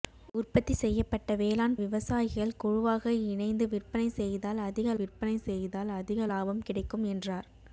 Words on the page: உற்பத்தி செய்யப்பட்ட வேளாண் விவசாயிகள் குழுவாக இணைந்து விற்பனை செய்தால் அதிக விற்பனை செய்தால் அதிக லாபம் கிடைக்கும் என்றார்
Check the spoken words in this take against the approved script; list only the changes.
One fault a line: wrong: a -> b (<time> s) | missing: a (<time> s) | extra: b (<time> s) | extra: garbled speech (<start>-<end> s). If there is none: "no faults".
no faults